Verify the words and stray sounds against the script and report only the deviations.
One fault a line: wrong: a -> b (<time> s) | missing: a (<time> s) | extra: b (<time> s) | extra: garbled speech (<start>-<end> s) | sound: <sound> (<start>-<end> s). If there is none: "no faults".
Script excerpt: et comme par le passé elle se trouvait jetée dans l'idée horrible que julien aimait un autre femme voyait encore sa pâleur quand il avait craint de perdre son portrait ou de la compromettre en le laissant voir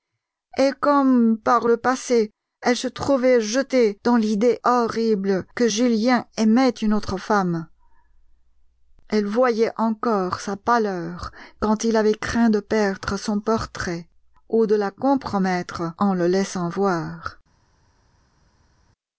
wrong: un -> une (6.7 s)
extra: elle (9.1 s)